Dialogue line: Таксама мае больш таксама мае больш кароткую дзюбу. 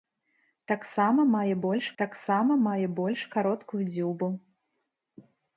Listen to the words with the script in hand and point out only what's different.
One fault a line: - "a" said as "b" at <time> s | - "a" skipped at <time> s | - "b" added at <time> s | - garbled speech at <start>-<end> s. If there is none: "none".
none